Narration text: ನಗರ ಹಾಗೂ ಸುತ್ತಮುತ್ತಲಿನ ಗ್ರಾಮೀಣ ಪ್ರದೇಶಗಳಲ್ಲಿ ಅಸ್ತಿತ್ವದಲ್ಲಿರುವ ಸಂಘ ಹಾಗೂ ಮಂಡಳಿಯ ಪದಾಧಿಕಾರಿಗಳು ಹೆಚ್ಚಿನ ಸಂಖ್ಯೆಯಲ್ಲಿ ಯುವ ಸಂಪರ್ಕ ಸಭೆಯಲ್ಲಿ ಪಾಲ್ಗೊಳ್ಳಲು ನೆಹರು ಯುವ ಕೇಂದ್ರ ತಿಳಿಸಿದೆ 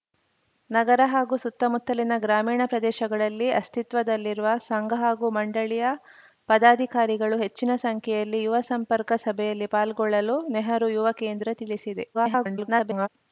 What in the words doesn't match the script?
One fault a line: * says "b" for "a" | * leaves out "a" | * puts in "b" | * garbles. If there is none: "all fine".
* garbles